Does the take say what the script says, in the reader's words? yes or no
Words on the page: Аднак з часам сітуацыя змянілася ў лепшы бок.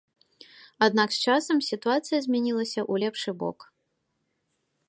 yes